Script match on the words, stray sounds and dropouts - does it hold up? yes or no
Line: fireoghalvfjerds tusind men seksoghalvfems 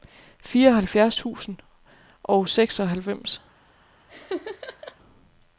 no